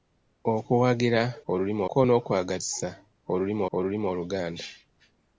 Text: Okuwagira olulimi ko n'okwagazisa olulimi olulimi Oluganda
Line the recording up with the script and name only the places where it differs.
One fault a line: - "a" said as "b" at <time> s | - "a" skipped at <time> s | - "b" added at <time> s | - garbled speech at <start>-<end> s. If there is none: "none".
none